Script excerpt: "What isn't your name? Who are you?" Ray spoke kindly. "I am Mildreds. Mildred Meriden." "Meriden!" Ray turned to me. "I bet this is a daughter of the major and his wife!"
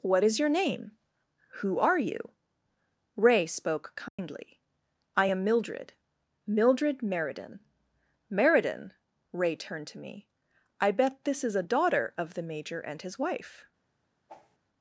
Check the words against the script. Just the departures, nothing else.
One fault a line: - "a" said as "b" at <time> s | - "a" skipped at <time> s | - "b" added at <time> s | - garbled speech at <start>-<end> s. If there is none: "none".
- "isn't" said as "is" at 0.2 s
- "Mildreds" said as "Mildred" at 5.4 s